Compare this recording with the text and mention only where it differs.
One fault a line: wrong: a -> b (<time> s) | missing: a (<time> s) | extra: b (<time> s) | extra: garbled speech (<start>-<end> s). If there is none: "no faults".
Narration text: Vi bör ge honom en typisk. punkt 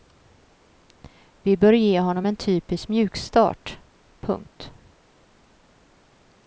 extra: mjukstart (2.9 s)